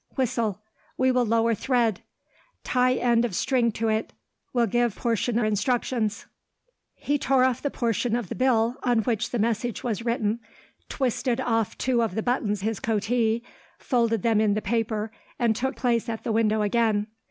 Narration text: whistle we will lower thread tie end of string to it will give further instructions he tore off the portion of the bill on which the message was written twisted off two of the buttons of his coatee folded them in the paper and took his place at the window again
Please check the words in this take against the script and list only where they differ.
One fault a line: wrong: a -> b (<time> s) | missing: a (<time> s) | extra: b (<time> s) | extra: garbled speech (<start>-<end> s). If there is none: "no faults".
wrong: further -> portion (4.9 s)
missing: of (12.6 s)
missing: his (15.8 s)